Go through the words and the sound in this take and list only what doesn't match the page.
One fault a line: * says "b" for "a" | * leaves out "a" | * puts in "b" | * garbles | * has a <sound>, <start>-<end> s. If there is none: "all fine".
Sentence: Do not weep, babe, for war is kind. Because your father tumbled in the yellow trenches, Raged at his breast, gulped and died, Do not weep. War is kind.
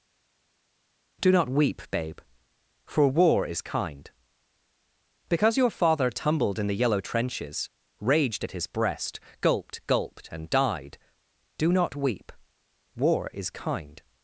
* puts in "gulped"